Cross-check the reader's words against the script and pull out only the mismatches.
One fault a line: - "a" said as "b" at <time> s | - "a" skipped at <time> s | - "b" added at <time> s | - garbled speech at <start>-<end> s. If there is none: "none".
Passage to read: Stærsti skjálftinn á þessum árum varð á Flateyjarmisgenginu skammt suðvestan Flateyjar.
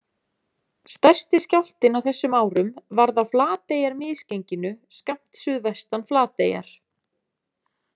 none